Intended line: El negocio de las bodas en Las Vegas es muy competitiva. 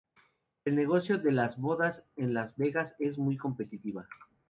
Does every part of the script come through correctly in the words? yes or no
yes